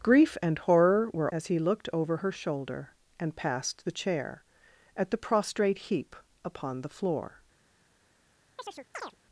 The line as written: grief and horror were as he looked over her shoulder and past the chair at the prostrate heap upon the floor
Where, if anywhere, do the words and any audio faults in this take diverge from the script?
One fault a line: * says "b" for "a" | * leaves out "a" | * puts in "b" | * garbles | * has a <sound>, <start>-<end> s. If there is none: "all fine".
* has a chirp, 8.6-9.2 s